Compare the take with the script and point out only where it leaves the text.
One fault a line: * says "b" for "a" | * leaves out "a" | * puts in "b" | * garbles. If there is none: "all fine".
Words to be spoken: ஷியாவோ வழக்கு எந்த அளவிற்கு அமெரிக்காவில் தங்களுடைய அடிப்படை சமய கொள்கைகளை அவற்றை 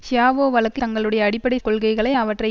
* leaves out "எந்த அளவிற்கு அமெரிக்காவில்"
* leaves out "சமய"